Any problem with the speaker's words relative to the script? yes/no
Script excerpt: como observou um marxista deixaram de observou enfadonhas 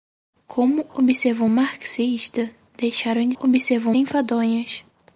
no